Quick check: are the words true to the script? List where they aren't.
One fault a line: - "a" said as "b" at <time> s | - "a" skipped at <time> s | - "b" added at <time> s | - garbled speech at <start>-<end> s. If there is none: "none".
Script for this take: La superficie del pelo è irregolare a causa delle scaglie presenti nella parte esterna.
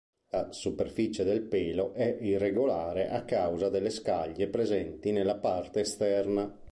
none